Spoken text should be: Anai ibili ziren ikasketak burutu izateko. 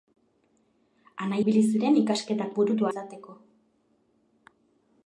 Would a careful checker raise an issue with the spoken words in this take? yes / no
no